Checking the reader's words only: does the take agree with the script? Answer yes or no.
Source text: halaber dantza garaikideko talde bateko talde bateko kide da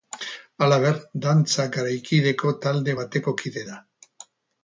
no